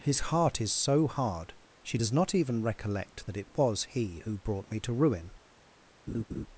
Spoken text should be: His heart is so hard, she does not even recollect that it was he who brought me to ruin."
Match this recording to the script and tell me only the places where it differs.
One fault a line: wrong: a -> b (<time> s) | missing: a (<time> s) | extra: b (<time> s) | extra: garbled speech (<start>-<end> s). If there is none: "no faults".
no faults